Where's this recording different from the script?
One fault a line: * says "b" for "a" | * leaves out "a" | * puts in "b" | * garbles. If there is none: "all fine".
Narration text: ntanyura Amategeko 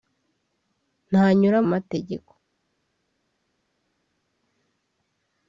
all fine